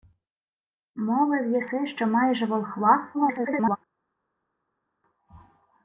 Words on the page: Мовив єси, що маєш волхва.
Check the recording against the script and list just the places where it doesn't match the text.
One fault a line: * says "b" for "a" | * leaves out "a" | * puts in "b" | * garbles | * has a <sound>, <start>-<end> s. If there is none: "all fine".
* garbles